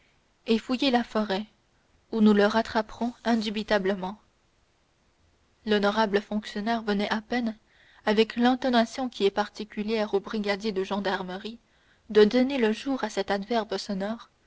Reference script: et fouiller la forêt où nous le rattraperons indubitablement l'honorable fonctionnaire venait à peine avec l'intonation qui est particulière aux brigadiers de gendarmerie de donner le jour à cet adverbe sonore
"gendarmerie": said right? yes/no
yes